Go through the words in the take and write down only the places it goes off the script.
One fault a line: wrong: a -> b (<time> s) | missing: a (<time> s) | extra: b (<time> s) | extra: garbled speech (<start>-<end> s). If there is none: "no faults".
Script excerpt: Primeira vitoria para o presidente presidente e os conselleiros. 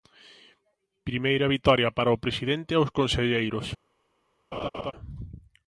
missing: presidente (2.7 s)